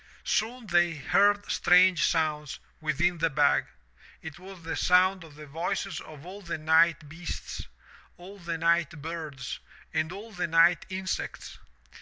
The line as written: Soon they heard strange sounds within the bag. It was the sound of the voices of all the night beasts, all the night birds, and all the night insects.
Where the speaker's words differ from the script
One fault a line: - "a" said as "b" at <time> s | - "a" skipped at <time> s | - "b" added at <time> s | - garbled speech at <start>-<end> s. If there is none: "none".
none